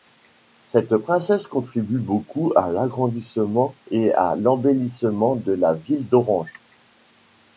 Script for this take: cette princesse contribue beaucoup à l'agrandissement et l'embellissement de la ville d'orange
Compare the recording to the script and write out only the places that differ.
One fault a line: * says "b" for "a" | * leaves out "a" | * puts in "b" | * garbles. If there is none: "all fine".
* puts in "à"